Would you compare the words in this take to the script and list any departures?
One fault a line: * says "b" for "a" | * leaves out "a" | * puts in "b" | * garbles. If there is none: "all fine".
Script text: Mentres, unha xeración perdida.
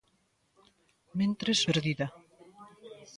* leaves out "unha xeración"